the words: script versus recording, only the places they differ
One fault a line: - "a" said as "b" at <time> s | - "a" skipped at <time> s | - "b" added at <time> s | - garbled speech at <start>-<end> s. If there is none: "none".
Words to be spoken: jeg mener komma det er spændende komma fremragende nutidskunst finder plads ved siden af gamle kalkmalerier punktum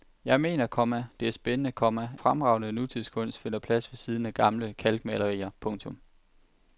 none